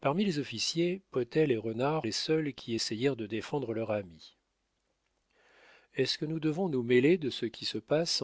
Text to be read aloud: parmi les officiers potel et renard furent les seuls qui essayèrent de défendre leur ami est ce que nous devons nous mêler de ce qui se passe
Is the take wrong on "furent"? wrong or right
wrong